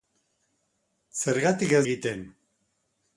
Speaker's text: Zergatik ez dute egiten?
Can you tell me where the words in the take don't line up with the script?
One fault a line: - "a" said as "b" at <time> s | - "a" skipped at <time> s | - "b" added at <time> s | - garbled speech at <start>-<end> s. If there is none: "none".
- "dute" skipped at 1.8 s